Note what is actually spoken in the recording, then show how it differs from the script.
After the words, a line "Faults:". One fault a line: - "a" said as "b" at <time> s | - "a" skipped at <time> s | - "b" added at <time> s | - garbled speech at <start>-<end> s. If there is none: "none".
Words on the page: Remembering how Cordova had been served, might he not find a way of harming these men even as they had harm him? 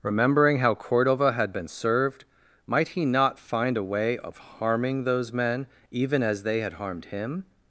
Remembering how Cordova had been served, might he not find a way of harming those men even as they had harmed him?
Faults:
- "these" said as "those" at 5.0 s
- "harm" said as "harmed" at 6.7 s